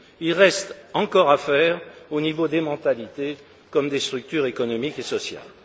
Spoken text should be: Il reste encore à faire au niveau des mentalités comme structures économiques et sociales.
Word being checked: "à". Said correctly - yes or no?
yes